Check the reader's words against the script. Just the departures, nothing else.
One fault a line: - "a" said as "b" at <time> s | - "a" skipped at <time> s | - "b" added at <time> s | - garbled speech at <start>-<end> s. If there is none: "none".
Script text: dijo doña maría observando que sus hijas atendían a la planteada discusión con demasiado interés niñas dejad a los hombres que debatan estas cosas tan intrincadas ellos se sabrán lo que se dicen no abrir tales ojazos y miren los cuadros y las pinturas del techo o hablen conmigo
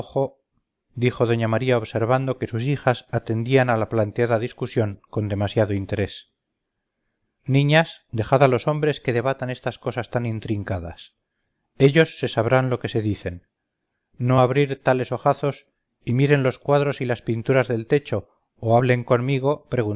none